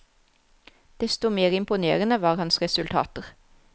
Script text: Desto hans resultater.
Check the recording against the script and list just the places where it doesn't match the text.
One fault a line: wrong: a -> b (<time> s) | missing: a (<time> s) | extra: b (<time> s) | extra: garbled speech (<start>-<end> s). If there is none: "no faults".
extra: mer imponerende var (1.3 s)